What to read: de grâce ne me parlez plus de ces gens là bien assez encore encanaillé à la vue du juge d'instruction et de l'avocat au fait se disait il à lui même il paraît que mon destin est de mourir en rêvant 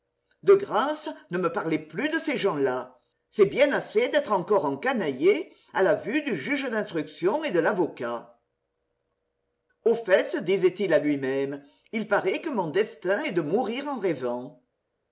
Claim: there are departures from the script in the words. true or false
true